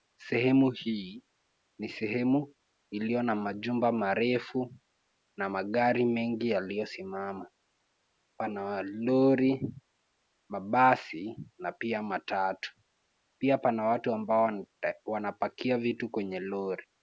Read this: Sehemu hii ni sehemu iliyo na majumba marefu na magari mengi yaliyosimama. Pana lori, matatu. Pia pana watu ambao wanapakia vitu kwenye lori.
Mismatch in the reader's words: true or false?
true